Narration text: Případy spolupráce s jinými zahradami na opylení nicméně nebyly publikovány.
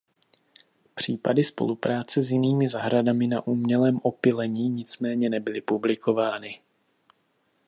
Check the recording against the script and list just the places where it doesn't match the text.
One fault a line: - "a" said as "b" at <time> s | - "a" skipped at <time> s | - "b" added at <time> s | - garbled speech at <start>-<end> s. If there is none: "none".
- "umělém" added at 3.5 s